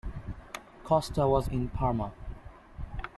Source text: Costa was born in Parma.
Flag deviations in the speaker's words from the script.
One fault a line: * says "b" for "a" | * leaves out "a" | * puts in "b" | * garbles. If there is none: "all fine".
* leaves out "born"